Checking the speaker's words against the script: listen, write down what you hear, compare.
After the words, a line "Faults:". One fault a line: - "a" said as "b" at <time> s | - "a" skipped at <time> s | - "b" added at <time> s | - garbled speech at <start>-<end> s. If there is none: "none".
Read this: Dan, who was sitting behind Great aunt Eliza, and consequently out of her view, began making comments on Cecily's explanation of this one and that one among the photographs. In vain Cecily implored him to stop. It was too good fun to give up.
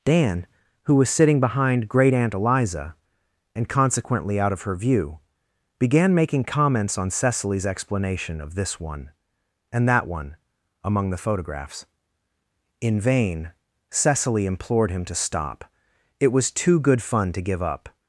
Dan, who was sitting behind Great aunt Eliza, and consequently out of her view, began making comments on Cecily's explanation of this one and that one among the photographs. In vain Cecily implored him to stop. It was too good fun to give up.
Faults:
none